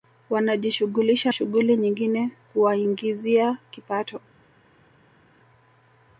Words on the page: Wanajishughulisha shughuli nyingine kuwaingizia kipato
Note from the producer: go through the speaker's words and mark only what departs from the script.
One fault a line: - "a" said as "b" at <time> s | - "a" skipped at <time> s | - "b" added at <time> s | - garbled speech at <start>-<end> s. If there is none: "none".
none